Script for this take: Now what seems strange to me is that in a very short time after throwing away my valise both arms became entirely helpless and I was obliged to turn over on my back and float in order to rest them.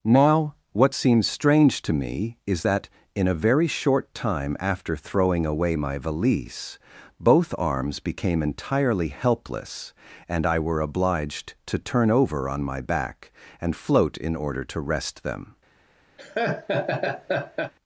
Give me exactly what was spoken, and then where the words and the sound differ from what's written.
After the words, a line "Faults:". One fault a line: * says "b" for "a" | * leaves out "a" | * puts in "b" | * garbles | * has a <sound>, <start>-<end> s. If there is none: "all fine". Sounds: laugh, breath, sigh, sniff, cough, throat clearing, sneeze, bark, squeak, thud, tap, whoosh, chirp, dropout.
Now what seems strange to me is that in a very short time after throwing away my valise both arms became entirely helpless and I were obliged to turn over on my back and float in order to rest them.
Faults:
* says "were" for "was"
* has a laugh, 16.2-17.7 s